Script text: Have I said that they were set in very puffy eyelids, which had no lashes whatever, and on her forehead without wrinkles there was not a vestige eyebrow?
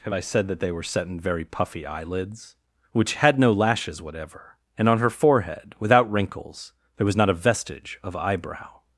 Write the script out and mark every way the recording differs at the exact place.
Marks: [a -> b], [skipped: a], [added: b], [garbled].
Have I said that they were set in very puffy eyelids, which had no lashes whatever, and on her forehead without wrinkles there was not a vestige [added: of] eyebrow?